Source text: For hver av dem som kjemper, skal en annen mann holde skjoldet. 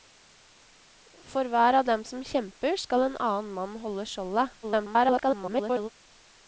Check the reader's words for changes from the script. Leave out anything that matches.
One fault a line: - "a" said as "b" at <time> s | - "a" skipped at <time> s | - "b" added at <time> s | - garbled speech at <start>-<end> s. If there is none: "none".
- garbled speech at 4.6-5.9 s